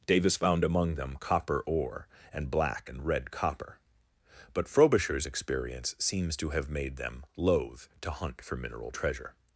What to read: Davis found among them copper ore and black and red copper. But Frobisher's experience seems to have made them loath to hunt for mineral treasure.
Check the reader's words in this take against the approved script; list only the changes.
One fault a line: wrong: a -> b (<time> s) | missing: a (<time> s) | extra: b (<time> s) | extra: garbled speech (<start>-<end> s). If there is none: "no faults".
no faults